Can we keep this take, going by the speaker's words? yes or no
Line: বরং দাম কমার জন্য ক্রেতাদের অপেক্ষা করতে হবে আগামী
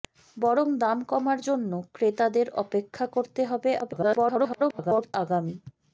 no